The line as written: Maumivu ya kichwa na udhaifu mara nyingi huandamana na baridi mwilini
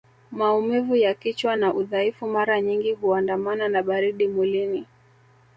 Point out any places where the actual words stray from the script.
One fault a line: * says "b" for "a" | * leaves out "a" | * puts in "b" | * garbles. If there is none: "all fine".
all fine